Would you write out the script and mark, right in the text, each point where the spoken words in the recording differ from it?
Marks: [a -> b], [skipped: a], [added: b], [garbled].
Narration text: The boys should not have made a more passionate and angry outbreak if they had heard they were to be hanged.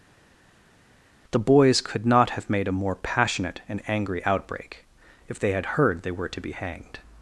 The boys [should -> could] not have made a more passionate and angry outbreak if they had heard they were to be hanged.